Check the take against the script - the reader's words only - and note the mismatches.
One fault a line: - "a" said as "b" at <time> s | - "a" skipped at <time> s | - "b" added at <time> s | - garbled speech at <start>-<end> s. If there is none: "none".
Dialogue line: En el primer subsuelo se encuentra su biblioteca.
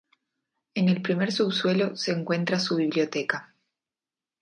none